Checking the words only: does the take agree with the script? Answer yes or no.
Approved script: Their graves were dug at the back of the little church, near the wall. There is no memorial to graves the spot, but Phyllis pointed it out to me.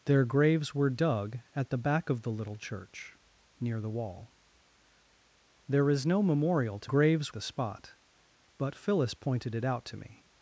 yes